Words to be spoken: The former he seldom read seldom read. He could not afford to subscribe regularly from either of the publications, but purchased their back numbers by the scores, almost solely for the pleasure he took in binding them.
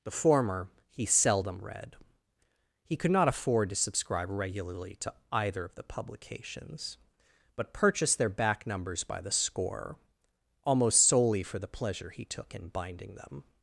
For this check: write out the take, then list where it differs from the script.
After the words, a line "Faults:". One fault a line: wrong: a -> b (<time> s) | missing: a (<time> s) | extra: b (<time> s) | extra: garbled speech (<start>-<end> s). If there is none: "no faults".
The former he seldom read. He could not afford to subscribe regularly to either of the publications, but purchased their back numbers by the score, almost solely for the pleasure he took in binding them.
Faults:
missing: seldom read (1.9 s)
wrong: from -> to (5.0 s)
wrong: scores -> score (9.3 s)